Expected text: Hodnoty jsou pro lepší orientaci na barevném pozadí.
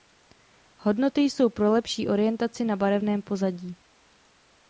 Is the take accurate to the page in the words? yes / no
yes